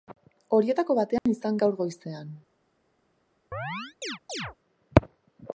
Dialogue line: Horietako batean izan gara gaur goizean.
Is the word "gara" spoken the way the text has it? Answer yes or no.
no